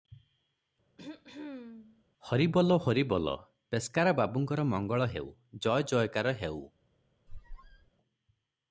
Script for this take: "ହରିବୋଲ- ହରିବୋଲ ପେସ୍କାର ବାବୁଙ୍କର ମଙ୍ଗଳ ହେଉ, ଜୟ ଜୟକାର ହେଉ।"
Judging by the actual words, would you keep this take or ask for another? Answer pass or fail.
pass